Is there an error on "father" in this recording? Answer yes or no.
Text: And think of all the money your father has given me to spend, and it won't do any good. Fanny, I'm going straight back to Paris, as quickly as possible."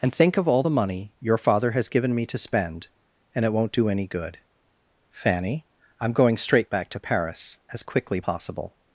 no